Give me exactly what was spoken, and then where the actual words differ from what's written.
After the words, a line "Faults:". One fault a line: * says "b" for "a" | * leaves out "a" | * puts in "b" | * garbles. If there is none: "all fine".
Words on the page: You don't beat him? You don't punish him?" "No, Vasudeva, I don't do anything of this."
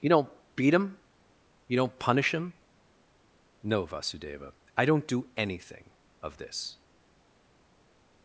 You don't beat him? You don't punish him?" "No, Vasudeva, I don't do anything of this."
Faults:
all fine